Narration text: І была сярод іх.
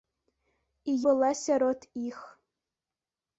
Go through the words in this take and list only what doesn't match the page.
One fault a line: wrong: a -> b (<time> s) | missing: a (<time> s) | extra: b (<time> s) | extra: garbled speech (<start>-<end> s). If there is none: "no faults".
no faults